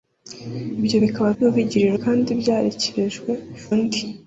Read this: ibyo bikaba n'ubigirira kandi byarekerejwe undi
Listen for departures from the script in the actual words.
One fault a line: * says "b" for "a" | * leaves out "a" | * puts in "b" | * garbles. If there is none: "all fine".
all fine